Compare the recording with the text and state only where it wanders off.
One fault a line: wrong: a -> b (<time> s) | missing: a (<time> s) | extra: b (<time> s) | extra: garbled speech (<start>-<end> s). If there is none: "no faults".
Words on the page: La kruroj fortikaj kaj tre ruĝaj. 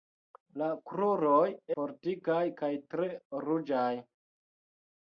no faults